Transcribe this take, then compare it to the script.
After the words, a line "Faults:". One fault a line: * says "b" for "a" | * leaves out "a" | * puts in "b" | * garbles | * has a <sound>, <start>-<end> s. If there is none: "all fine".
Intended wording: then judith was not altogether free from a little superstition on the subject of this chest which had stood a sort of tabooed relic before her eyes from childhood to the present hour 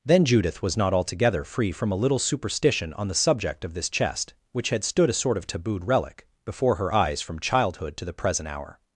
then judith was not altogether free from a little superstition on the subject of this chest which had stood a sort of tabooed relic before her eyes from childhood to the present hour
Faults:
all fine